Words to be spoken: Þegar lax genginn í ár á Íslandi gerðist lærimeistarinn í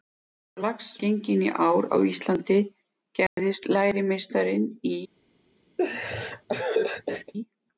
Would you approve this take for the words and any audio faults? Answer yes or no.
no